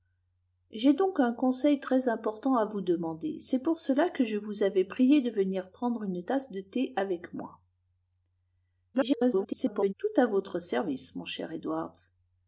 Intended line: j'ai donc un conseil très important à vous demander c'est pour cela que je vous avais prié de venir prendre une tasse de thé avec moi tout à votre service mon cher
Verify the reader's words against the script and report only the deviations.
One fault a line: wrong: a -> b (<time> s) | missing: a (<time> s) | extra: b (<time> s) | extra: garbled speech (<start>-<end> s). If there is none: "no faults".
extra: garbled speech (8.9-9.9 s)